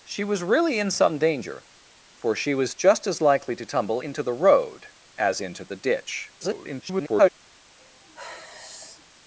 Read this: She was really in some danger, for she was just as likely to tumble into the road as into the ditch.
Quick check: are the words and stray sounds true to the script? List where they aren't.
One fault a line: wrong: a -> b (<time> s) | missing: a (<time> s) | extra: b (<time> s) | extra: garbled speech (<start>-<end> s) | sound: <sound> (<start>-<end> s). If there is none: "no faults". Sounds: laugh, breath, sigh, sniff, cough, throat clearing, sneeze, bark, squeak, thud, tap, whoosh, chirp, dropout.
extra: garbled speech (6.4-7.3 s)
sound: sigh (7.8-9.1 s)